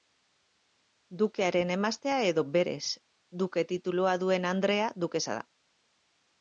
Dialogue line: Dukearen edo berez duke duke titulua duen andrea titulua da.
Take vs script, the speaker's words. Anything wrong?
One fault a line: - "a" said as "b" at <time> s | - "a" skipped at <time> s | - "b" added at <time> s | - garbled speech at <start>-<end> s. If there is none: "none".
- "emaztea" added at 1.8 s
- "duke" skipped at 3.7 s
- "titulua" said as "dukesa" at 5.1 s